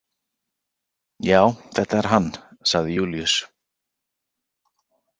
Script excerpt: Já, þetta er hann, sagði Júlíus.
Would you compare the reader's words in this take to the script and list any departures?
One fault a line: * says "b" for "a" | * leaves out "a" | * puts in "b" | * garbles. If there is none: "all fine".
all fine